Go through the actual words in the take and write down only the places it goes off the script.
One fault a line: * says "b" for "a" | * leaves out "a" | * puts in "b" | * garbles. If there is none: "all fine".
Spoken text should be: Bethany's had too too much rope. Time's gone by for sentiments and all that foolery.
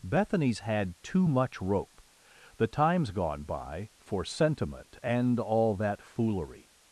* leaves out "too"
* puts in "The"
* says "sentiment" for "sentiments"